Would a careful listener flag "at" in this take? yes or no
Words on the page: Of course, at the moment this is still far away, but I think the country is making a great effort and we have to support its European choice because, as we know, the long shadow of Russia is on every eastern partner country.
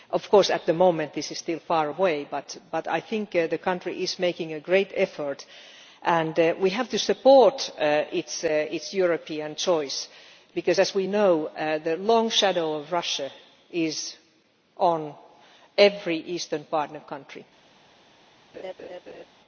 no